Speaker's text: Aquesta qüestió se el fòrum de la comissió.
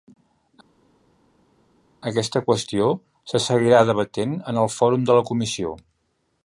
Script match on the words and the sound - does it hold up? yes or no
no